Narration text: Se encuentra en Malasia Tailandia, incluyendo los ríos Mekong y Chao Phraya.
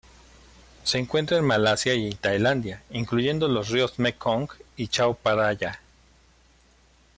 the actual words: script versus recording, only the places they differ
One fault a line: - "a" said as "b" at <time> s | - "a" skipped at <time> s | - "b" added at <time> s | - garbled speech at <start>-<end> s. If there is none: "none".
- "y" added at 1.9 s